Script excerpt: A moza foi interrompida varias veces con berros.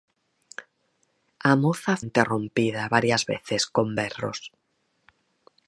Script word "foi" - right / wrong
wrong